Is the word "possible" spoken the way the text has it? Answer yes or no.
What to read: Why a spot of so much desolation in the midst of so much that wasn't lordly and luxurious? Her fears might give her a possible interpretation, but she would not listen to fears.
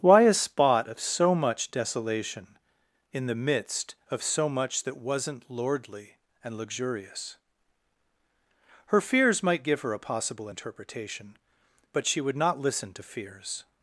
yes